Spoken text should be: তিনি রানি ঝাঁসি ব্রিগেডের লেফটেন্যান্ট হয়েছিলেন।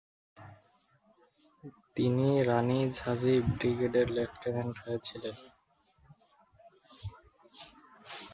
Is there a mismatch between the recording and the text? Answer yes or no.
no